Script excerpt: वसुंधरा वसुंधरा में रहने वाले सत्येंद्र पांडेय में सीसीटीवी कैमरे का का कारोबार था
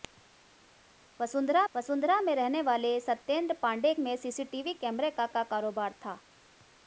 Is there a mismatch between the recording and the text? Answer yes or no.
no